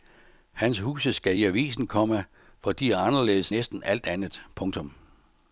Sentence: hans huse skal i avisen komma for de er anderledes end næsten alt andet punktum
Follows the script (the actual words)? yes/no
no